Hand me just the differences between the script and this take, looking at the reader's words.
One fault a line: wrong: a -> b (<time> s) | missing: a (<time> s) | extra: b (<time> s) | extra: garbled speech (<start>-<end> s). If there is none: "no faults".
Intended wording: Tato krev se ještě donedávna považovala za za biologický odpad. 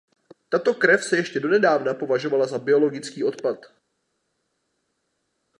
missing: za (2.6 s)